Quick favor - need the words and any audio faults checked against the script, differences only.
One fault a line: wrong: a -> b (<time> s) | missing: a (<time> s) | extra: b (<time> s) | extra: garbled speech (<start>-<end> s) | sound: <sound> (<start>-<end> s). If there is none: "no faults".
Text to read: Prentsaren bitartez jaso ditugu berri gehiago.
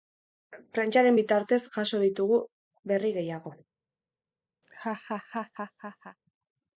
sound: laugh (4.6-6.2 s)